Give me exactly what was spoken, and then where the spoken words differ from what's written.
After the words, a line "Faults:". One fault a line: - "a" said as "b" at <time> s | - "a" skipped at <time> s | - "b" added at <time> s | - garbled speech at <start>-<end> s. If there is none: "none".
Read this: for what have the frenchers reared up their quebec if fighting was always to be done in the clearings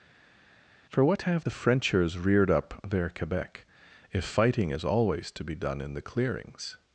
for what have the frenchers reared up their quebec if fighting is always to be done in the clearings
Faults:
- "was" said as "is" at 4.7 s